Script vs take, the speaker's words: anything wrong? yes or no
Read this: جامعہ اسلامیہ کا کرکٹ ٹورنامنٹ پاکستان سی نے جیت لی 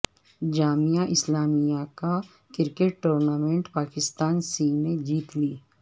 no